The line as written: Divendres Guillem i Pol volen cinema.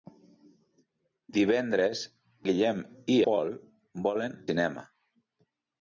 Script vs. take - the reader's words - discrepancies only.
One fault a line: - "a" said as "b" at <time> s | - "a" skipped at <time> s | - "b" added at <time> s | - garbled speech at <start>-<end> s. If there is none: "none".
none